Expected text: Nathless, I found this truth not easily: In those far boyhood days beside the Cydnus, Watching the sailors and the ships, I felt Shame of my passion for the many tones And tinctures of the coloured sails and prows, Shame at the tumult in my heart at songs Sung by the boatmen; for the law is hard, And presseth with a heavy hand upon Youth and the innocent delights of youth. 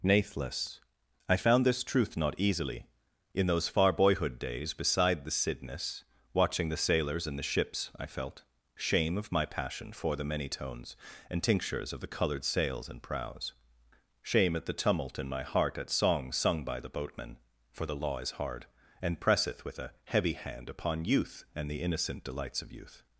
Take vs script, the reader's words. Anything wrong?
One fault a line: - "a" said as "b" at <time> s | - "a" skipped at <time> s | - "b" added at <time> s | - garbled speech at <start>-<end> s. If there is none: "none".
none